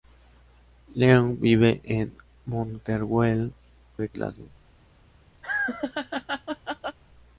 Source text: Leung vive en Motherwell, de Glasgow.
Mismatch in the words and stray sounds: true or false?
true